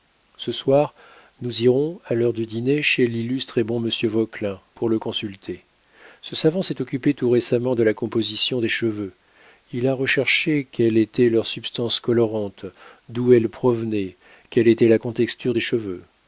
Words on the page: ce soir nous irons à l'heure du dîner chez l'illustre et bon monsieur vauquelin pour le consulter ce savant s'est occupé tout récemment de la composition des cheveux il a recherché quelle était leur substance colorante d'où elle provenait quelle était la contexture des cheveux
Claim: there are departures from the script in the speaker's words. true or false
false